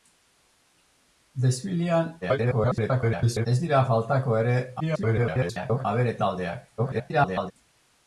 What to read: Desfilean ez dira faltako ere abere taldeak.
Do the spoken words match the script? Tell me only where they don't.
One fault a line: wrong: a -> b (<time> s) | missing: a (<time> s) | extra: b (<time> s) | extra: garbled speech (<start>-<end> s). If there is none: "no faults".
extra: garbled speech (2.2-3.5 s)
extra: garbled speech (4.8-5.9 s)
extra: garbled speech (6.8-7.5 s)